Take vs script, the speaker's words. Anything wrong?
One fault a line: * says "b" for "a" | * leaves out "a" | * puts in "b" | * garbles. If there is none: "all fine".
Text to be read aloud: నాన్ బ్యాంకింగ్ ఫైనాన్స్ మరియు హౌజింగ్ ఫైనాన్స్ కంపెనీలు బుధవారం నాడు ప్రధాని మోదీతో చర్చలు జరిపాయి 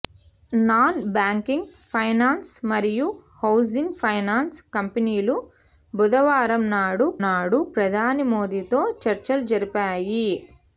* puts in "నాడు"